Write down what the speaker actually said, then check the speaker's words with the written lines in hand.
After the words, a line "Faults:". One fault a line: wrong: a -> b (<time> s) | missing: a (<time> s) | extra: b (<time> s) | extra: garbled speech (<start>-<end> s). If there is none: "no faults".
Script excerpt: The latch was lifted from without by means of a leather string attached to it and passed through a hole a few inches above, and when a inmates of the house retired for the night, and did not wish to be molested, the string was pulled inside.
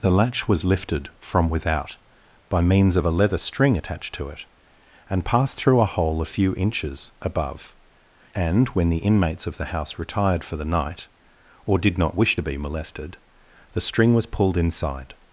The latch was lifted from without by means of a leather string attached to it and passed through a hole a few inches above, and when the inmates of the house retired for the night, or did not wish to be molested, the string was pulled inside.
Faults:
wrong: a -> the (8.9 s)
wrong: and -> or (11.6 s)